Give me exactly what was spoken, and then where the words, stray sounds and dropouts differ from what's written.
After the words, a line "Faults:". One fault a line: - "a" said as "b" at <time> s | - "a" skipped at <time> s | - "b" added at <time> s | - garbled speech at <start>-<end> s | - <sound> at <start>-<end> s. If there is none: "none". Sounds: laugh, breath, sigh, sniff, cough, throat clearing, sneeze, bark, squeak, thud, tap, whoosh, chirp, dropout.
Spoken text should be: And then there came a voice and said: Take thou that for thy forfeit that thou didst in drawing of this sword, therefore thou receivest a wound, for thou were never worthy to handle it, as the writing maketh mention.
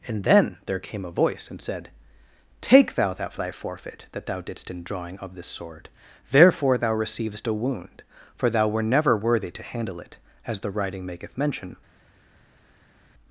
And then there came a voice and said: Take thou that thy forfeit that thou didst in drawing of this sword, therefore thou receivest a wound, for thou were never worthy to handle it, as the writing maketh mention.
Faults:
- "for" skipped at 3.3 s